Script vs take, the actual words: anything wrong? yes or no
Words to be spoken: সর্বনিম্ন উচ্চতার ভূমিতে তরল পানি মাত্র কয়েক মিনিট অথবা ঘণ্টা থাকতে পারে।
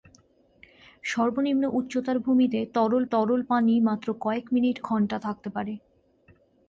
yes